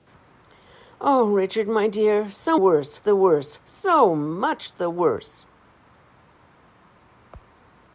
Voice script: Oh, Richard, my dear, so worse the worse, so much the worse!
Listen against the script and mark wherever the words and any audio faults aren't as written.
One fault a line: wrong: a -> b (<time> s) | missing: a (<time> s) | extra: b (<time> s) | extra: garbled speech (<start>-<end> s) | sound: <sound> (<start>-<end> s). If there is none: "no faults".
no faults